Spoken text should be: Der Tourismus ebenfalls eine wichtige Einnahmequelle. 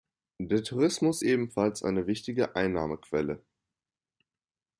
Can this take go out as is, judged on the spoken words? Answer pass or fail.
pass